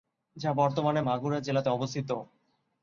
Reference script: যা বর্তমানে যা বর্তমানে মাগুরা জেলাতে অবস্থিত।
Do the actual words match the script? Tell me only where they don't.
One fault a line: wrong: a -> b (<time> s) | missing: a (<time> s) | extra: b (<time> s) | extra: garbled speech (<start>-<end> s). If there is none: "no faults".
missing: যা বর্তমানে (1.0 s)